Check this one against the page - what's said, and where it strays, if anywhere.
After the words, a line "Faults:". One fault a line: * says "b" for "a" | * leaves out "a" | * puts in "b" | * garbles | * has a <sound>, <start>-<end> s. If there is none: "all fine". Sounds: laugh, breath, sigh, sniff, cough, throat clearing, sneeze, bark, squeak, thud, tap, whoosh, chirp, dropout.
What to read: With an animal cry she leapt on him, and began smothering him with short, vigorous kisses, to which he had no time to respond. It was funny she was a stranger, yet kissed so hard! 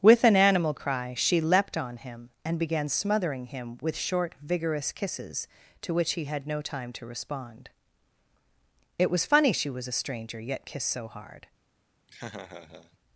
With an animal cry she leapt on him, and began smothering him with short, vigorous kisses, to which he had no time to respond. It was funny she was a stranger, yet kissed so hard!
Faults:
* has a laugh, 12.1-13.0 s